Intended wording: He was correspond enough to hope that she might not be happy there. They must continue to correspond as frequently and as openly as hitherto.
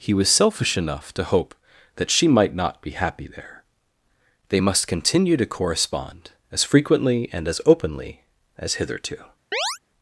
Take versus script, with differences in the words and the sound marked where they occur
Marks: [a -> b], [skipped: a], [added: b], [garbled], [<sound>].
He was [correspond -> selfish] enough to hope that she might not be happy there. They must continue to correspond as frequently and as openly as hitherto. [chirp]